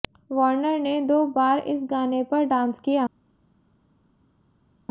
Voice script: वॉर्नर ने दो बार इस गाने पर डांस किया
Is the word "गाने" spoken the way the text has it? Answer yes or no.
yes